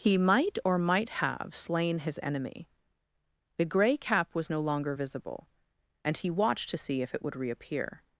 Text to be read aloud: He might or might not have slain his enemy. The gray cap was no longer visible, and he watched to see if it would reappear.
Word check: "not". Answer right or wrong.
wrong